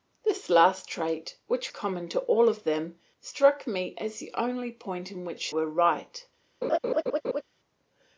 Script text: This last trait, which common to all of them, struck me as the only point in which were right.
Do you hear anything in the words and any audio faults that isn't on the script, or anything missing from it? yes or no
yes